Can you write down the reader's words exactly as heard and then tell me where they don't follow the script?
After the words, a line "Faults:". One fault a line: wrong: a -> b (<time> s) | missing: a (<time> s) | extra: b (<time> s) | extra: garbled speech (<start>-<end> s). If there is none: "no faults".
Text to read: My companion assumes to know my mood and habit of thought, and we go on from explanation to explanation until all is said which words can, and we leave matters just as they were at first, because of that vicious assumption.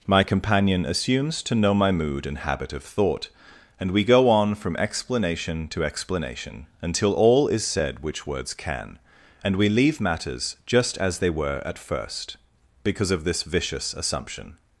My companion assumes to know my mood and habit of thought, and we go on from explanation to explanation until all is said which words can, and we leave matters just as they were at first, because of this vicious assumption.
Faults:
wrong: that -> this (13.2 s)